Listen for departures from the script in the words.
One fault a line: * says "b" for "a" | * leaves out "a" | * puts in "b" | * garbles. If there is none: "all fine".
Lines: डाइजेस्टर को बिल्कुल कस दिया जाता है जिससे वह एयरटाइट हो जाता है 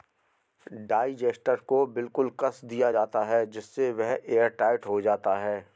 all fine